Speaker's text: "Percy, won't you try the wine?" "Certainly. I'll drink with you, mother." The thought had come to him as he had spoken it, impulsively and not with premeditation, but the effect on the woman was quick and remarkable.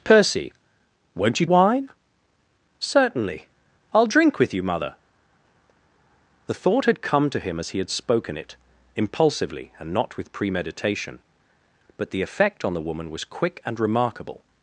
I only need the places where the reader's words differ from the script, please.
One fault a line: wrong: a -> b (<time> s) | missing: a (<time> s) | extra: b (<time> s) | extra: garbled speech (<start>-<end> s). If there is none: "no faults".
missing: try the (1.4 s)